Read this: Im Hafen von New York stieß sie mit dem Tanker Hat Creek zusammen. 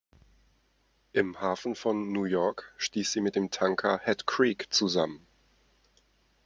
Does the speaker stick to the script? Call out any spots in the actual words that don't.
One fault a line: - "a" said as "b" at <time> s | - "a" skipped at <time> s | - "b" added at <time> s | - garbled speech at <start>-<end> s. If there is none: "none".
none